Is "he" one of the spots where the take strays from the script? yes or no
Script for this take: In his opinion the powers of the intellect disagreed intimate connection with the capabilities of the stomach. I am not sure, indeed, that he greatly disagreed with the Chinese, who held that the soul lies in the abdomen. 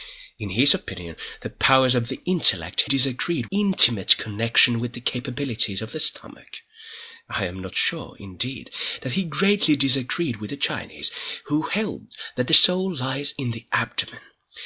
no